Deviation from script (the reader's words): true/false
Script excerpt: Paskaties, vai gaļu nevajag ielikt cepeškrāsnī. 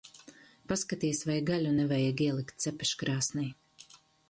false